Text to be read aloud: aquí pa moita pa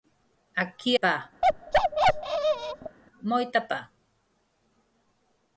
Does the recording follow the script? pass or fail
pass